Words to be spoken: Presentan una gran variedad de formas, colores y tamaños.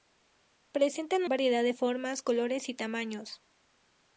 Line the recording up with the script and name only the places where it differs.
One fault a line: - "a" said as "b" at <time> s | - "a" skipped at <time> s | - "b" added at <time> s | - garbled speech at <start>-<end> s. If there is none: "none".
- "una gran" skipped at 1.2 s